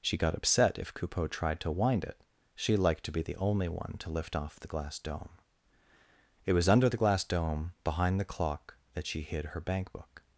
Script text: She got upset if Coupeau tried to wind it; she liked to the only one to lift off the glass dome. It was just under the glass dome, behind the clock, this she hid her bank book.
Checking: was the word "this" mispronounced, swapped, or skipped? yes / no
yes